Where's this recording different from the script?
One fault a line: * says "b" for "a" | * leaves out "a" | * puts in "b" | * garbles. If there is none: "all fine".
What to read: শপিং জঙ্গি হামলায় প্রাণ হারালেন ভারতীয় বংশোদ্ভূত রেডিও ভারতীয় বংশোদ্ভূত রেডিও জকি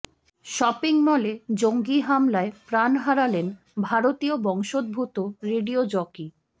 * puts in "মলে"
* leaves out "ভারতীয় বংশোদ্ভূত রেডিও"